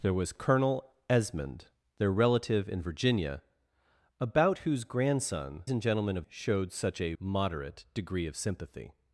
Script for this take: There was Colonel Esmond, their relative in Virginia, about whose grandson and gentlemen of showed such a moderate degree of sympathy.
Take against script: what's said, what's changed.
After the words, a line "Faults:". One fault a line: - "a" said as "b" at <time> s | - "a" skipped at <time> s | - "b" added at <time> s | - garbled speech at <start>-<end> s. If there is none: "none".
There was Colonel Esmond, their relative in Virginia, about whose grandson and gentlemen of showed such a moderate degree of sympathy.
Faults:
none